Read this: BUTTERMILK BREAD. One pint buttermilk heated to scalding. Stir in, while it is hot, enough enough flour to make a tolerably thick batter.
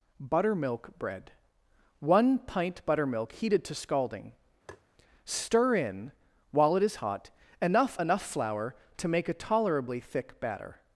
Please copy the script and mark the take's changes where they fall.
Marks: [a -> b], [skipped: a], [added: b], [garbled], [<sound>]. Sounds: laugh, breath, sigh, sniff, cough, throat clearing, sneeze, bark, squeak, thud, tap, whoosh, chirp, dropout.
BUTTERMILK BREAD. One pint buttermilk heated to scalding. [tap] Stir in, while it is hot, enough enough flour to make a tolerably thick batter.